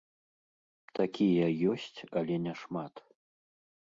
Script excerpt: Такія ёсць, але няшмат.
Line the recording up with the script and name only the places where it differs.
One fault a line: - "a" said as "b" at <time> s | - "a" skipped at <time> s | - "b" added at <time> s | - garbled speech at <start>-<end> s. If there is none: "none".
none